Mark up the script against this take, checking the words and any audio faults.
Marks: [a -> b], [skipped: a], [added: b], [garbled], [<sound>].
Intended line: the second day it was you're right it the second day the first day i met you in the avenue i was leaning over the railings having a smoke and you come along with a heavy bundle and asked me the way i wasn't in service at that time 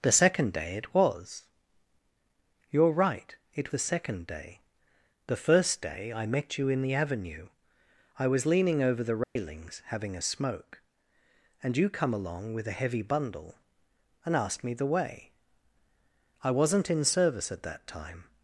the second day it was you're right it the second day the first day i met you in the avenue i was leaning over the railings [dropout] having a smoke and you come along with a heavy bundle and asked me the way i wasn't in service at that time